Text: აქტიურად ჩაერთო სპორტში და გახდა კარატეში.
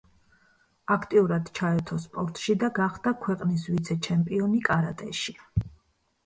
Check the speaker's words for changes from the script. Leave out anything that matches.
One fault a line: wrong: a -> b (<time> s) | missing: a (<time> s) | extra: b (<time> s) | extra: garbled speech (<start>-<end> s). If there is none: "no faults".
extra: ქვეყნის ვიცე ჩემპიონი (3.3 s)